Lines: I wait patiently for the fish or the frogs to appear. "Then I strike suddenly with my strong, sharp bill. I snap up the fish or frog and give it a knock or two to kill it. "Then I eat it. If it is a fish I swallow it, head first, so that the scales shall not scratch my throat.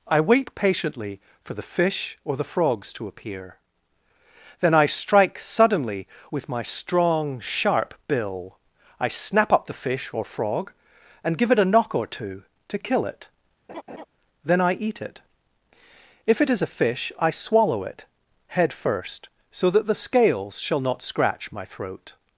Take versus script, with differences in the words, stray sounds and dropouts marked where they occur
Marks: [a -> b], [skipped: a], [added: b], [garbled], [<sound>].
I wait patiently for the fish or the frogs to appear. "Then I strike suddenly with my strong, sharp bill. I snap up the fish or frog and give it a knock or two to kill it. [laugh] "Then I eat it. If it is a fish I swallow it, head first, so that the scales shall not scratch my throat.